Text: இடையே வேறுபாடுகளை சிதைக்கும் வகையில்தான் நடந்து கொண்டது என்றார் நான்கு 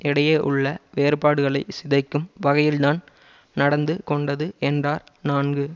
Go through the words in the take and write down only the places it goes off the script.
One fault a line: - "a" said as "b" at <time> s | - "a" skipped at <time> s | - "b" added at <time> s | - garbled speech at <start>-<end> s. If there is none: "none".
- "உள்ள" added at 0.4 s